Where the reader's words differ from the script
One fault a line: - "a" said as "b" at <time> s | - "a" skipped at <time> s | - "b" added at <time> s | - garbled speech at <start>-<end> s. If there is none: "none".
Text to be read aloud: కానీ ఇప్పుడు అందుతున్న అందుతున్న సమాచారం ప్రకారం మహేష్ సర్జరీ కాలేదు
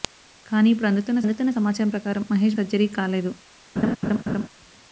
none